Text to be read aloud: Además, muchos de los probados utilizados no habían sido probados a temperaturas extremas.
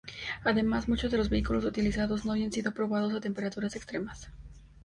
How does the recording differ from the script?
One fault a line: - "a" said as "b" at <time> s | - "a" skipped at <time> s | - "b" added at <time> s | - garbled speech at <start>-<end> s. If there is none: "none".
- "probados" said as "vehículos" at 1.3 s